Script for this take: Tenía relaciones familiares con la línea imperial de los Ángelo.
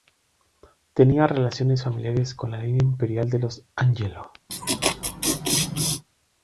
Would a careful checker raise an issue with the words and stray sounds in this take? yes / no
yes